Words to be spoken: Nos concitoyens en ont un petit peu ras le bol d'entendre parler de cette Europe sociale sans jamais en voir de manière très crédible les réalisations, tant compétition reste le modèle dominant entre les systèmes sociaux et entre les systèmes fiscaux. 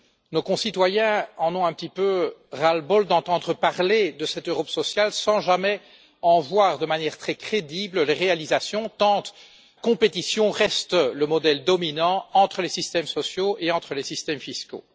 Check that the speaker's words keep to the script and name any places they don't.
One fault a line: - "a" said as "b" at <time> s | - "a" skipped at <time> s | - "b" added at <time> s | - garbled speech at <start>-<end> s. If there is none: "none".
none